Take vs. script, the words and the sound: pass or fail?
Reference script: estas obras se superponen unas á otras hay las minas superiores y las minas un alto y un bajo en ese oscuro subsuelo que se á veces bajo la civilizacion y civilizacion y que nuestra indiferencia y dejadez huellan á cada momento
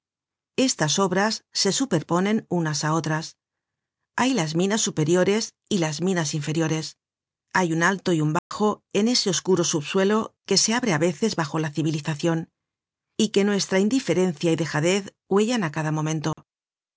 fail